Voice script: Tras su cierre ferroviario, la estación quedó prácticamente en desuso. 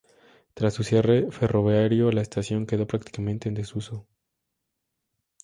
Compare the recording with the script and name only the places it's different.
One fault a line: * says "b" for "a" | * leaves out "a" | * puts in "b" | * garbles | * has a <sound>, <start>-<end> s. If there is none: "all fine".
all fine